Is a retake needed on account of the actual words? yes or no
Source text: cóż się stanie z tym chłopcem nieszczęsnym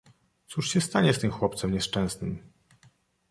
no